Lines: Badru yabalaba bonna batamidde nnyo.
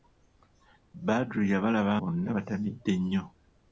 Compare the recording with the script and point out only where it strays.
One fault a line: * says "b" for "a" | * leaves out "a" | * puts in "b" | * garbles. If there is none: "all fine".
all fine